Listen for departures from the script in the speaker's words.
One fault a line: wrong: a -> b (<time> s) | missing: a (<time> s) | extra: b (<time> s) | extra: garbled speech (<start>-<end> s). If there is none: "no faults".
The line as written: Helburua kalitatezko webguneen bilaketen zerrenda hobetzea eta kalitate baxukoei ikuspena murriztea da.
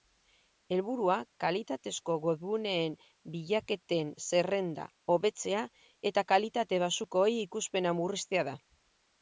no faults